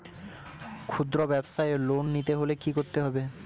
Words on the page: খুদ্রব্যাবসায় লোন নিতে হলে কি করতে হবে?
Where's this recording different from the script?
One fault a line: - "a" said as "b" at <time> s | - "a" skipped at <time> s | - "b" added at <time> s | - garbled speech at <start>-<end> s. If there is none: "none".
none